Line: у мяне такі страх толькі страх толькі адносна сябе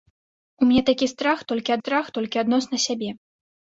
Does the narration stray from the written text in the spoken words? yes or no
no